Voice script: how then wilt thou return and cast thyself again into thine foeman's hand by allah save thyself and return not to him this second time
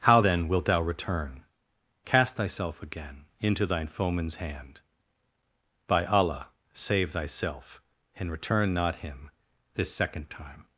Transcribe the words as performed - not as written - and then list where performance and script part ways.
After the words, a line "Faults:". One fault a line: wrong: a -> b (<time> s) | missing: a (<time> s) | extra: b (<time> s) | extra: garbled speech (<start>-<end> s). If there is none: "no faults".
how then wilt thou return cast thyself again into thine foeman's hand by allah save thyself and return not him this second time
Faults:
missing: and (1.4 s)
missing: to (9.0 s)